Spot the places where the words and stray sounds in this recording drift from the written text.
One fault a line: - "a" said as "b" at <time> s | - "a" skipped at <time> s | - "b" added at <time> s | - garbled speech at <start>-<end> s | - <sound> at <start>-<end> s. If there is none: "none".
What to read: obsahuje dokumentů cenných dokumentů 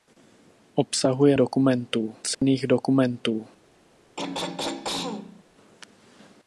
- dropout at 2.3-2.4 s
- throat clearing at 4.2-5.4 s